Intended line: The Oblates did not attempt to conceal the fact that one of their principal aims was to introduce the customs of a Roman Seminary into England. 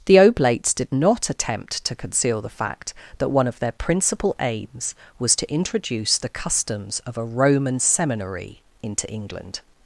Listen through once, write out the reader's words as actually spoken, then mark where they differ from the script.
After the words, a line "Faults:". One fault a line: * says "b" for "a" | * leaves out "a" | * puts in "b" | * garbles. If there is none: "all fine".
The Oblates did not attempt to conceal the fact that one of their principal aims was to introduce the customs of a Roman Seminary into England.
Faults:
all fine